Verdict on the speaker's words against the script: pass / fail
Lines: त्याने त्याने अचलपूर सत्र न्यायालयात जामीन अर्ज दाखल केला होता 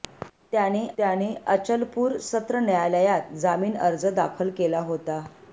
pass